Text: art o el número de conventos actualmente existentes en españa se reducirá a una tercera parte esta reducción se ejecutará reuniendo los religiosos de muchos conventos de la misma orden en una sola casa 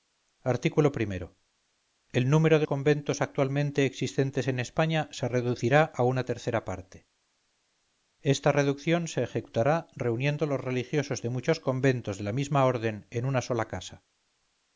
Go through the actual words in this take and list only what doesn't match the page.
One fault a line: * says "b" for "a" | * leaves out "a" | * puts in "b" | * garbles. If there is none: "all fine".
all fine